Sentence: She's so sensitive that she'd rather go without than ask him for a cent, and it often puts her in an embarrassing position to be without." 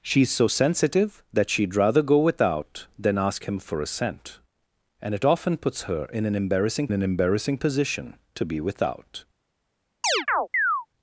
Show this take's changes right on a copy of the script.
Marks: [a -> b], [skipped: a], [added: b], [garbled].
She's so sensitive that she'd rather go without than ask him for a cent, and it often puts her in an embarrassing [added: an embarrassing] position to be without."